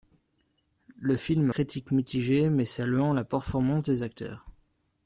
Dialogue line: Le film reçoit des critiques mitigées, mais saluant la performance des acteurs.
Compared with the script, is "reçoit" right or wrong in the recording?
wrong